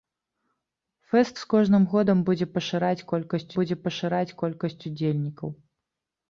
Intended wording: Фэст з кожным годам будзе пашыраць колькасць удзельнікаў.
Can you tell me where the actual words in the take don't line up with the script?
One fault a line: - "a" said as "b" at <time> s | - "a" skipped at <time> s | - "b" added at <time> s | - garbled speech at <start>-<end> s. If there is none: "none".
- "будзе пашыраць колькасць" added at 3.6 s